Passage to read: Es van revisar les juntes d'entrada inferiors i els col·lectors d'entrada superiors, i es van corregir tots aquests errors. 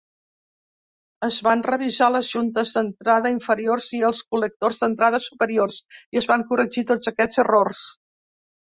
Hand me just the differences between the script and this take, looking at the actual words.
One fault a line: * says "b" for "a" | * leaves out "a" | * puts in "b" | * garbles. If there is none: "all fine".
all fine